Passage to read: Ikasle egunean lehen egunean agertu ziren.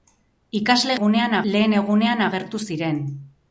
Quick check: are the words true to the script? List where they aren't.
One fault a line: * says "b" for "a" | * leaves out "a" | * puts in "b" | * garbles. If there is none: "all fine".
all fine